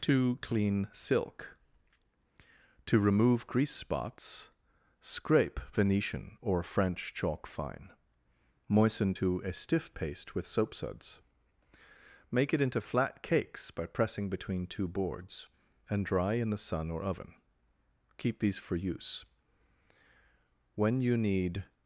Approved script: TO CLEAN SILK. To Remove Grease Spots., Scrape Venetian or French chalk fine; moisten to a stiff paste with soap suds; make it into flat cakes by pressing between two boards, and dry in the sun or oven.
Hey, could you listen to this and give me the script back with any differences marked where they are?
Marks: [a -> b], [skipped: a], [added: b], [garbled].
TO CLEAN SILK. To Remove Grease Spots., Scrape Venetian or French chalk fine; moisten to a stiff paste with soap suds; make it into flat cakes by pressing between two boards, and dry in the sun or oven. [added: Keep these for use When you need]